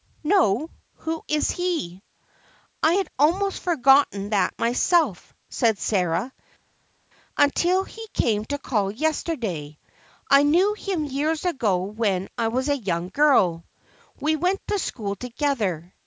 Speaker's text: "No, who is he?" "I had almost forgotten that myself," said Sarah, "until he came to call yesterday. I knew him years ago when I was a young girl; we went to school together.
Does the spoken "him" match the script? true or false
true